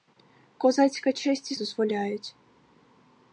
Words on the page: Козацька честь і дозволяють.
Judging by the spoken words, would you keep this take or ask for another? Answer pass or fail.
pass